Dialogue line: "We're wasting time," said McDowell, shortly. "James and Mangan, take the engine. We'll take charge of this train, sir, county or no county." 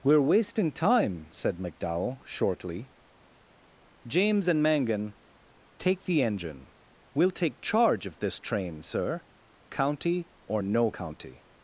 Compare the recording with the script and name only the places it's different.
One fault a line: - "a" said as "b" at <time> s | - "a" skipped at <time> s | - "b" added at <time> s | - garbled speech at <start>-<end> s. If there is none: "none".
none